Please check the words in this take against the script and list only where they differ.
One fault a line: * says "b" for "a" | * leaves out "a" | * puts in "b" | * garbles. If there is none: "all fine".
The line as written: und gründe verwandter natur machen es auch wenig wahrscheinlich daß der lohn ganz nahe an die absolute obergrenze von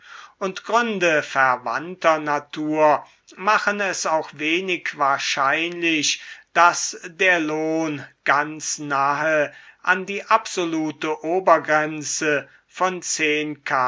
all fine